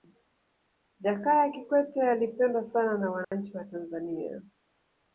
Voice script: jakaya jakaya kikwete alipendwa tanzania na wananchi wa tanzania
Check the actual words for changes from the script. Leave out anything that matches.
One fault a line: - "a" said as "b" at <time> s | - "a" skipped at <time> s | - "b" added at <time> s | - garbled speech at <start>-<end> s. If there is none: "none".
- "jakaya" skipped at 1.5 s
- "tanzania" said as "sana" at 2.6 s